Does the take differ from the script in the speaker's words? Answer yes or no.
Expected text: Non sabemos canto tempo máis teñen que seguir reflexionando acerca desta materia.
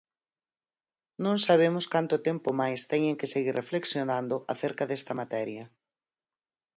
no